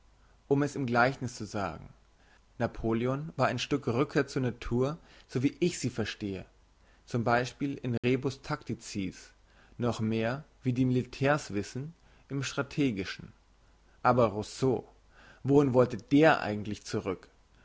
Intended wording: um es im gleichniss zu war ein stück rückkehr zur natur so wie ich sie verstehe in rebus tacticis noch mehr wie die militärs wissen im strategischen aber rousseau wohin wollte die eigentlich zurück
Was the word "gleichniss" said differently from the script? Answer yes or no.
no